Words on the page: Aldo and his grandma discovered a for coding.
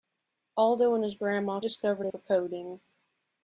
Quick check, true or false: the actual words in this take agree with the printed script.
true